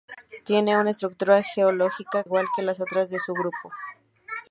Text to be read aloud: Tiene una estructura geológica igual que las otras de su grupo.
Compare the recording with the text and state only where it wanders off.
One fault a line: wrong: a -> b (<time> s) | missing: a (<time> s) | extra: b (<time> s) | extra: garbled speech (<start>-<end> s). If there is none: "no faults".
no faults